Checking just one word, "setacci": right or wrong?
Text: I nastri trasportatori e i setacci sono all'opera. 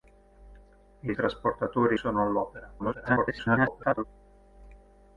wrong